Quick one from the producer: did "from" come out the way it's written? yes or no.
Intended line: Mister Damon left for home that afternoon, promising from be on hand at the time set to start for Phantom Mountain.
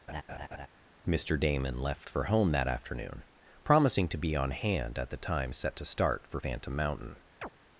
no